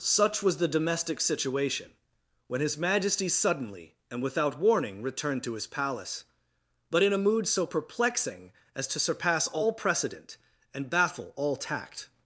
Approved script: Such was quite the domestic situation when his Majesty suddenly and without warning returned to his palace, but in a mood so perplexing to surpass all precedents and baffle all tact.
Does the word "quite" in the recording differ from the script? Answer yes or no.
yes